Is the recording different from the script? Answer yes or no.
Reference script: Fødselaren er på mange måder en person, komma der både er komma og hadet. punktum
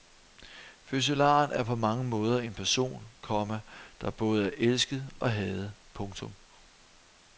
yes